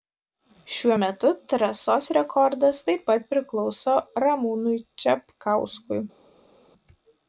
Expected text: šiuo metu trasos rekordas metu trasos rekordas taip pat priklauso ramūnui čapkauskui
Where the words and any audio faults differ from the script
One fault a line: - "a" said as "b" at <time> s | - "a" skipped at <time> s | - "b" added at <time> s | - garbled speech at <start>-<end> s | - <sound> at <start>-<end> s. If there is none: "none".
- "metu trasos rekordas" skipped at 2.8 s